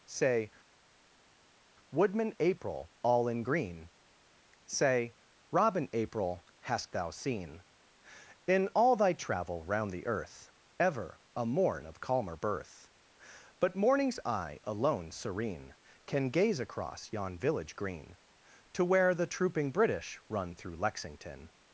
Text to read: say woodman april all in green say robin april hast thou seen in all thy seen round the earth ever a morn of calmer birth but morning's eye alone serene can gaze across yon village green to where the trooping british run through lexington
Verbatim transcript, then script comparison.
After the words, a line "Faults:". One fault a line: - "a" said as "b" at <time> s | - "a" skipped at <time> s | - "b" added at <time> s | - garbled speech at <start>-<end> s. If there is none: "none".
say woodman april all in green say robin april hast thou seen in all thy travel round the earth ever a morn of calmer birth but morning's eye alone serene can gaze across yon village green to where the trooping british run through lexington
Faults:
- "seen" said as "travel" at 9.1 s